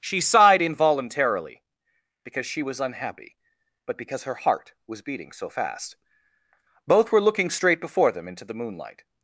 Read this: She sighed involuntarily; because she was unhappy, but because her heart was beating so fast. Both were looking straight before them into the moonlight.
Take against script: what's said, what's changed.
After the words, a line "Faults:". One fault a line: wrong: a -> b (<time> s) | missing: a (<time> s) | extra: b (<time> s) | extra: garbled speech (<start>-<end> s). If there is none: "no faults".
She sighed involuntarily; because she was unhappy, but because her heart was beating so fast. Both were looking straight before them into the moonlight.
Faults:
no faults